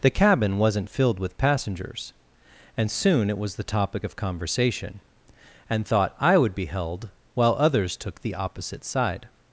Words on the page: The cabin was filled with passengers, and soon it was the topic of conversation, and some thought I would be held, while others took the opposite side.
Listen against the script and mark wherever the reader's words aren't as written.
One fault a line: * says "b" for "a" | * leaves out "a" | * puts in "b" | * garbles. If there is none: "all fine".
* says "wasn't" for "was"
* leaves out "some"